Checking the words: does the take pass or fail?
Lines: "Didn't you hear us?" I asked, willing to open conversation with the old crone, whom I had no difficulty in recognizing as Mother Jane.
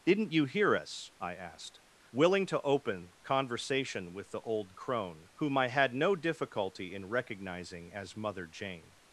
pass